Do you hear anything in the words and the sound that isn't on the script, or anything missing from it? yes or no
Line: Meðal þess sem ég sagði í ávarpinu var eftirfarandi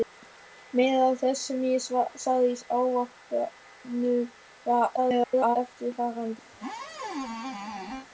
yes